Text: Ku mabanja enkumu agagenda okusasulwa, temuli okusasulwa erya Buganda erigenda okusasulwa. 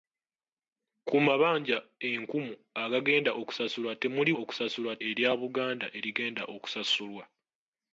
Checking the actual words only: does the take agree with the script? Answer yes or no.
yes